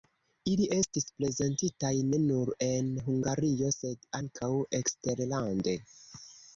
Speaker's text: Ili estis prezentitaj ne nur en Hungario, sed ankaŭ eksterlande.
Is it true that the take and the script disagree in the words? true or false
false